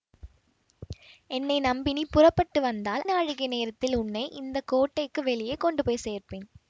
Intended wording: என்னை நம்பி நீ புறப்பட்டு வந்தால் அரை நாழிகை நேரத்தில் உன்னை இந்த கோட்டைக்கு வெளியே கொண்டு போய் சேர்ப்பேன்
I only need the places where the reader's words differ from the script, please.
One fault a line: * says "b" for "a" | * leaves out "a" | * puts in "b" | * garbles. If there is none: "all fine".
* leaves out "அரை"